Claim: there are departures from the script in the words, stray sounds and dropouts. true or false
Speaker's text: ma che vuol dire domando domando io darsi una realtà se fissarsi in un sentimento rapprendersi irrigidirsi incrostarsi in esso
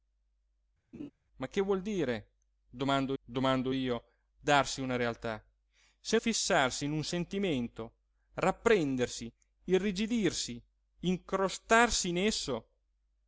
true